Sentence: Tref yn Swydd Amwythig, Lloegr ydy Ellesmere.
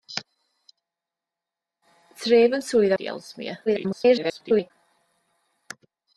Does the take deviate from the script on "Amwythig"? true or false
true